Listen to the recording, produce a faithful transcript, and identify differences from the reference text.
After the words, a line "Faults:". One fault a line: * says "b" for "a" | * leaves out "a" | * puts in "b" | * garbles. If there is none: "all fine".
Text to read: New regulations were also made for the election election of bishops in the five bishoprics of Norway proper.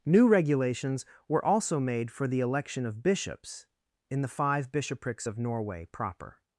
New regulations were also made for the election of bishops in the five bishoprics of Norway proper.
Faults:
* leaves out "election"